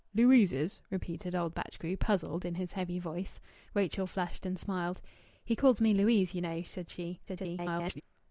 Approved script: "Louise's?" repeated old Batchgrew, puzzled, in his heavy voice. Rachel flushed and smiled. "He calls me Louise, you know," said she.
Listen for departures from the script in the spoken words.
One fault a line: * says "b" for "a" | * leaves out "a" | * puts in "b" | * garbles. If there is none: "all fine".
* garbles